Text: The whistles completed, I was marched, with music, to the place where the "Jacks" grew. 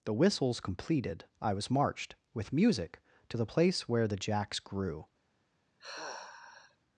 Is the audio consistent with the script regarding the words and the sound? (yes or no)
no